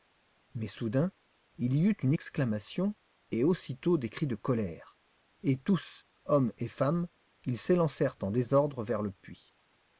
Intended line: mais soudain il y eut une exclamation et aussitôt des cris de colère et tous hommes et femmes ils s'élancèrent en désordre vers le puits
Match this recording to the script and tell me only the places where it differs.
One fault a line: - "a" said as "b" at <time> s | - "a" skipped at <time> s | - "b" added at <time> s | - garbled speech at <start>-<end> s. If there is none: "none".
none